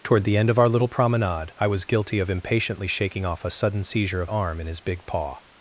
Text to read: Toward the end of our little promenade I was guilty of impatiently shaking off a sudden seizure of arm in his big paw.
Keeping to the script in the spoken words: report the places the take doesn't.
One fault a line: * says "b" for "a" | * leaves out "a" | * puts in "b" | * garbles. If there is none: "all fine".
all fine